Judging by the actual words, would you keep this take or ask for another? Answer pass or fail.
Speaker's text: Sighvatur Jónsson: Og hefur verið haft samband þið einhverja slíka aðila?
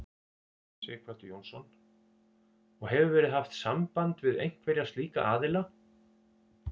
fail